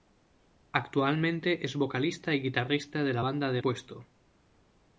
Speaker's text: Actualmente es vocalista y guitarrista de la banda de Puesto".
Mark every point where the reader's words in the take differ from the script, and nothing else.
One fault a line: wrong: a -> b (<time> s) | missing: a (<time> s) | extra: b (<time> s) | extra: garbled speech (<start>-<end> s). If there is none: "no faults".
no faults